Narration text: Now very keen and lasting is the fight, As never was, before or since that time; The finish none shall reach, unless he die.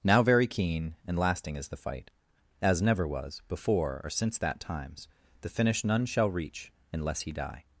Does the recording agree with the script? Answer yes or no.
no